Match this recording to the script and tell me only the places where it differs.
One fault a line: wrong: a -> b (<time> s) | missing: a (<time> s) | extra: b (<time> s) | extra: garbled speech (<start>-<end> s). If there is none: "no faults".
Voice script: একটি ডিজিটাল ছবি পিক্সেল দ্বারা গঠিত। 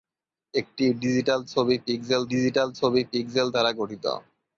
extra: ডিজিটাল ছবি পিক্সেল (2.3 s)